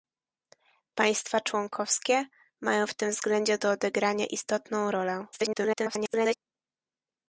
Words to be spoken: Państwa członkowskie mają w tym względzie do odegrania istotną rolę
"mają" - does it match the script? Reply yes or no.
yes